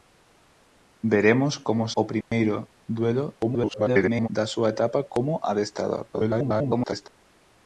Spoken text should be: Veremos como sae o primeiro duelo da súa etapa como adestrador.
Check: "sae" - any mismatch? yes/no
yes